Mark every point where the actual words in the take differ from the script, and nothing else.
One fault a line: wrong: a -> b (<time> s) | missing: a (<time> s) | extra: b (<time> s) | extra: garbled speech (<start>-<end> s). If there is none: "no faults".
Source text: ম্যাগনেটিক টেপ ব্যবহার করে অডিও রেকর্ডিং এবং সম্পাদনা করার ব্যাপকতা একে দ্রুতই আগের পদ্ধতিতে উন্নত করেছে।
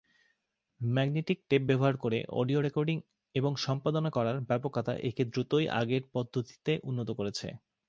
no faults